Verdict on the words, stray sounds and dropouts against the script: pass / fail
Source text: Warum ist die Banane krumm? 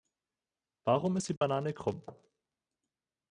fail